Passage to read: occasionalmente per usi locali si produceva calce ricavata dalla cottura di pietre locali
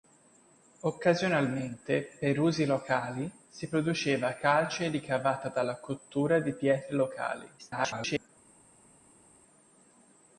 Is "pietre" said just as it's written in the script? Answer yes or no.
yes